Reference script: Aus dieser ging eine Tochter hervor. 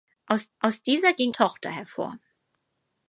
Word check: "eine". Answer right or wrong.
wrong